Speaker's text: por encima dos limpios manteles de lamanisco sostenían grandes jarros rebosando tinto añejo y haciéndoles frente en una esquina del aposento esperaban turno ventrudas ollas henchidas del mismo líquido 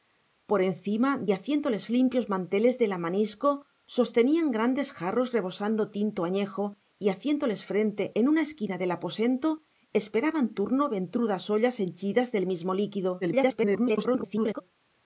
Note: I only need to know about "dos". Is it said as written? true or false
false